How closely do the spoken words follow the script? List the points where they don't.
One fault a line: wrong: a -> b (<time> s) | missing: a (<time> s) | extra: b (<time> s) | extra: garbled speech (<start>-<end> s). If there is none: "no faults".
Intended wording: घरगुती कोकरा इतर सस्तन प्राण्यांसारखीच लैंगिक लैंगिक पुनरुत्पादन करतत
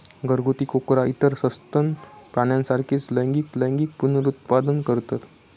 no faults